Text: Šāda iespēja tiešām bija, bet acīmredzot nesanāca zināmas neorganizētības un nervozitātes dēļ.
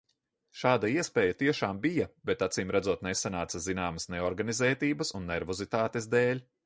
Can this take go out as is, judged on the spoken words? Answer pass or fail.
pass